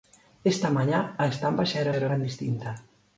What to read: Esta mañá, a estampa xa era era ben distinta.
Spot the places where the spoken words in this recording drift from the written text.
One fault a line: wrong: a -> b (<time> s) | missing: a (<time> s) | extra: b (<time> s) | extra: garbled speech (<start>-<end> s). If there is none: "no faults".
no faults